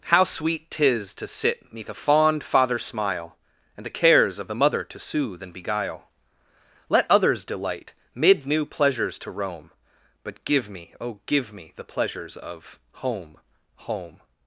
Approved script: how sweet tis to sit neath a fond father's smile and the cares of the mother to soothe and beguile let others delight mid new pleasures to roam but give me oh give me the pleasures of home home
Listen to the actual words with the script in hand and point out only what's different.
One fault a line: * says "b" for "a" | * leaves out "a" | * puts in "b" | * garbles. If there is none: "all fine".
all fine